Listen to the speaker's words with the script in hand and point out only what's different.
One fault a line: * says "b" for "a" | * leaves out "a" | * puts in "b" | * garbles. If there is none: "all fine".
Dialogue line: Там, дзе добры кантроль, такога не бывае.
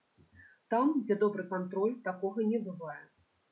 all fine